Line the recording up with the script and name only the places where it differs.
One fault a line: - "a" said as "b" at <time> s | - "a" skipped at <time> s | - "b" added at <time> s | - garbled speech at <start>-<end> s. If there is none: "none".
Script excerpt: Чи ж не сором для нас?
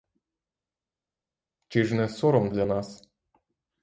none